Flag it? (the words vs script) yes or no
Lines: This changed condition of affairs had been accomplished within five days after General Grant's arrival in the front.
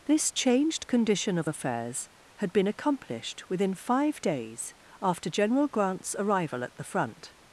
yes